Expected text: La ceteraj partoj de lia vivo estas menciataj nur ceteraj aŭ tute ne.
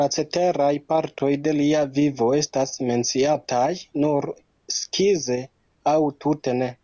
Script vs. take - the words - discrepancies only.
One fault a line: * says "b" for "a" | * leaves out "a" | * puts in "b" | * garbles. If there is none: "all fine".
* says "skize" for "ceteraj"